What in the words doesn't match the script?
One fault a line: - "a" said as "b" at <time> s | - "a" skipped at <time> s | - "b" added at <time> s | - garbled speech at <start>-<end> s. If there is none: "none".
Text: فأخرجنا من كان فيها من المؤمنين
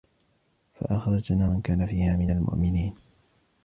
none